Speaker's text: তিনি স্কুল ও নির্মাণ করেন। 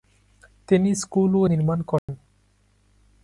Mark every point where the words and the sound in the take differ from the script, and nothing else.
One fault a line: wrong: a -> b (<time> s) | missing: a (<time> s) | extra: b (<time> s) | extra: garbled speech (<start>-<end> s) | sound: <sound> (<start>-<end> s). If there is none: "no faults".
sound: dropout (2.0-2.1 s)